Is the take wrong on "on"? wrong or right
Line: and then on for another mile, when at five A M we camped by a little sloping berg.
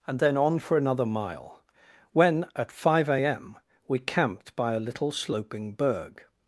right